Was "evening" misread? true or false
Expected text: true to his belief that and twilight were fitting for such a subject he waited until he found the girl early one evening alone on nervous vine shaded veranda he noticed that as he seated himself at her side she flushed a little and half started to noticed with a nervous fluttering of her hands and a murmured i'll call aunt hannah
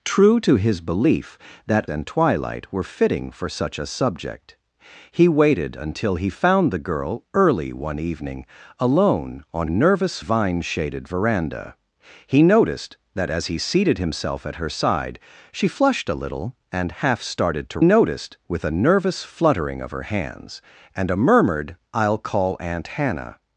false